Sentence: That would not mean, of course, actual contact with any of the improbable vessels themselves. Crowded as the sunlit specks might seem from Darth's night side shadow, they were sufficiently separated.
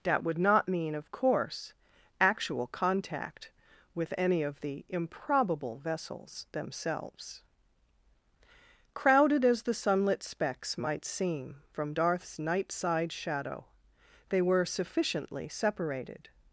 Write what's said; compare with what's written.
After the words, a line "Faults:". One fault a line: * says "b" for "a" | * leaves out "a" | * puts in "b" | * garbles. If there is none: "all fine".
That would not mean, of course, actual contact with any of the improbable vessels themselves. Crowded as the sunlit specks might seem from Darth's night side shadow, they were sufficiently separated.
Faults:
all fine